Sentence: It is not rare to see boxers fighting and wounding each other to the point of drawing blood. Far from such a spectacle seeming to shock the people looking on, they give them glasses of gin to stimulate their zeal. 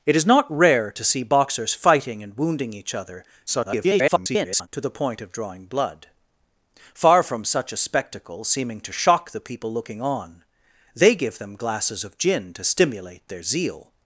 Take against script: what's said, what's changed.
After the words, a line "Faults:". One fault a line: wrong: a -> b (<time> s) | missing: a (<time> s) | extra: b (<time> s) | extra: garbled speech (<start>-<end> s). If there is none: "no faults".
It is not rare to see boxers fighting and wounding each other [garbled] to the point of drawing blood. Far from such a spectacle seeming to shock the people looking on, they give them glasses of gin to stimulate their zeal.
Faults:
extra: garbled speech (3.5-4.7 s)